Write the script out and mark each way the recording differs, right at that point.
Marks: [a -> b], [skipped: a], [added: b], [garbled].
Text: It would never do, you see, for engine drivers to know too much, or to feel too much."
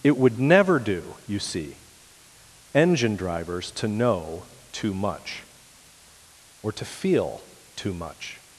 It would never do, you see, [skipped: for] engine drivers to know too much, or to feel too much."